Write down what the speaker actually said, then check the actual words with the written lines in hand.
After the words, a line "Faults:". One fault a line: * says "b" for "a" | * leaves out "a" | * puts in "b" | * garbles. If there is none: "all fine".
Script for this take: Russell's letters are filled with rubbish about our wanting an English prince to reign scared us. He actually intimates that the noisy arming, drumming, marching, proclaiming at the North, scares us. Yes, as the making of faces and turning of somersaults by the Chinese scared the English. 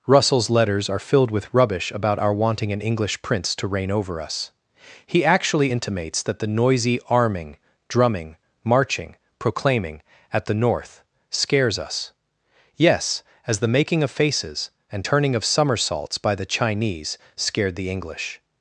Russell's letters are filled with rubbish about our wanting an English prince to reign over us. He actually intimates that the noisy arming, drumming, marching, proclaiming at the North, scares us. Yes, as the making of faces and turning of somersaults by the Chinese scared the English.
Faults:
* says "over" for "scared"